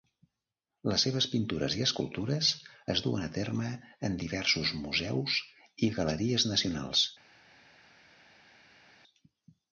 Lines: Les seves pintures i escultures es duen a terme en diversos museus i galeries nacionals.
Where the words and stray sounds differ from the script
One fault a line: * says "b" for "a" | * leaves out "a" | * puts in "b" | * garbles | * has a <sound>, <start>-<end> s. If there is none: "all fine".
all fine